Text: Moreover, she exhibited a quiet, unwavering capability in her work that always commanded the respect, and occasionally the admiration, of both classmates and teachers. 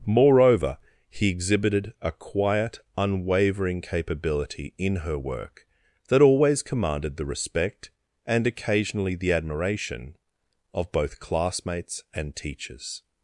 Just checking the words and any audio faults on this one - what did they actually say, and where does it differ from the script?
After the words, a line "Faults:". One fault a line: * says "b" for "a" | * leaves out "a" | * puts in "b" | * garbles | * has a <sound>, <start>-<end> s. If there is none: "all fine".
Moreover, he exhibited a quiet, unwavering capability in her work that always commanded the respect, and occasionally the admiration, of both classmates and teachers.
Faults:
* says "he" for "she"